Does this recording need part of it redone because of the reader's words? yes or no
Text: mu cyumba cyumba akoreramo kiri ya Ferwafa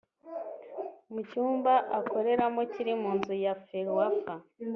yes